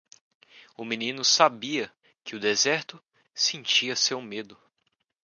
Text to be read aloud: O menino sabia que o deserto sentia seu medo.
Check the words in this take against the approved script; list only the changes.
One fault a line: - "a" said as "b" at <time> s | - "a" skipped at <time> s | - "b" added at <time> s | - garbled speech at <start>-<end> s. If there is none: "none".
none